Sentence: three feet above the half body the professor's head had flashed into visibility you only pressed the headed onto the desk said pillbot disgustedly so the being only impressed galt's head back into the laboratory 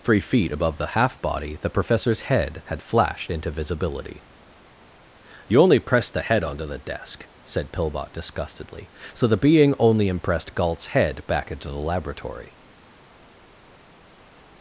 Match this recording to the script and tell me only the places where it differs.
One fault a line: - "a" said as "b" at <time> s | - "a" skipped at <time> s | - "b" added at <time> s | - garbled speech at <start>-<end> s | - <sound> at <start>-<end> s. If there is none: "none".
- "headed" said as "head" at 6.2 s